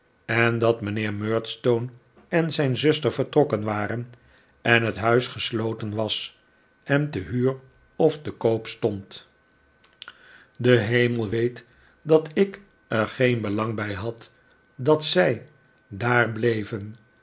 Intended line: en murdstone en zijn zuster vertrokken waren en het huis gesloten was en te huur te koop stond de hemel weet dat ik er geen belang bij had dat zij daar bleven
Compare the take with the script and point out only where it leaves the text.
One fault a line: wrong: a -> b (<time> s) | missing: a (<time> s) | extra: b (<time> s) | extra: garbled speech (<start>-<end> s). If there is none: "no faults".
extra: dat mijnheer (0.6 s)
extra: of (8.0 s)